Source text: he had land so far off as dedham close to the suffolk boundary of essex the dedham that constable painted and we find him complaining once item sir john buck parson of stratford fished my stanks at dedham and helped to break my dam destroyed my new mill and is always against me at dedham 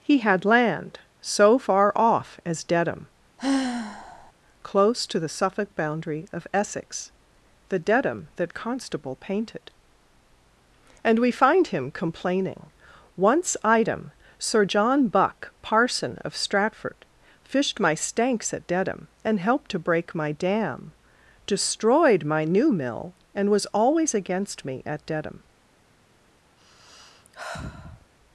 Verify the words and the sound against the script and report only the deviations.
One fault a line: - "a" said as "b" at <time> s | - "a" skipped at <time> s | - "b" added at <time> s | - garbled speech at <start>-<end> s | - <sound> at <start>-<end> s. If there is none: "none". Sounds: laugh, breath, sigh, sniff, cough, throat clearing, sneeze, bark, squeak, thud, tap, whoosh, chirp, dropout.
- sigh at 3.4-4.3 s
- "is" said as "was" at 23.5 s
- sigh at 26.6-28.1 s